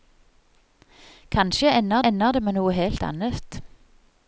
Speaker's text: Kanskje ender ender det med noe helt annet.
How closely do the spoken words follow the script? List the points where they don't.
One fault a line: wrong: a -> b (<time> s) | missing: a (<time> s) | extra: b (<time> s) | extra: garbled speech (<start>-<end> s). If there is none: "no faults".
no faults